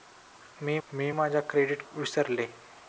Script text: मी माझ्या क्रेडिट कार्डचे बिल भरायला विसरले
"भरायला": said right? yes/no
no